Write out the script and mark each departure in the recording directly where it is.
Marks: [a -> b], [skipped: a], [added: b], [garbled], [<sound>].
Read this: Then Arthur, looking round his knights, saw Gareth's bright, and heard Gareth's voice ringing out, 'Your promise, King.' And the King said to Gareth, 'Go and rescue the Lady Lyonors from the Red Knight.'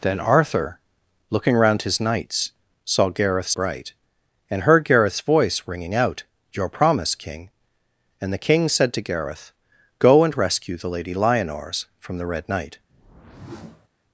Then Arthur, looking round his knights, saw Gareth's bright, and heard Gareth's voice ringing out, 'Your promise, King.' And the King said to Gareth, 'Go and rescue the Lady Lyonors from the Red Knight.' [whoosh]